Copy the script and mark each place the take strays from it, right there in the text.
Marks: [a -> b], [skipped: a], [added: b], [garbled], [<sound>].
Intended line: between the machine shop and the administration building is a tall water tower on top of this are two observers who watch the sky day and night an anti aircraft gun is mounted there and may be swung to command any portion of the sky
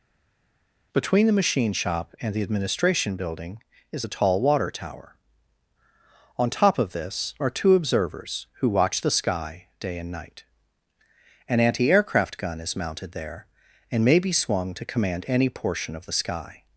between the machine shop and the administration building is a tall water tower on top of this are two observers who watch the sky day and night an anti aircraft gun is mounted there and may be swung to command any portion of the sky